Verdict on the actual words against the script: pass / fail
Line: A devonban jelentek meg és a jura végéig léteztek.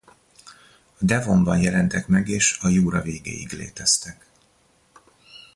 pass